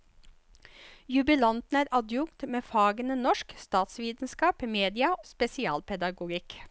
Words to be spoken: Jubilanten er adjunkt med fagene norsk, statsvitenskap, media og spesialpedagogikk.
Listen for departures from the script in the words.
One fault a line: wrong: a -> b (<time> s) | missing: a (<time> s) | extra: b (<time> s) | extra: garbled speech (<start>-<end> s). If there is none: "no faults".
missing: og (5.1 s)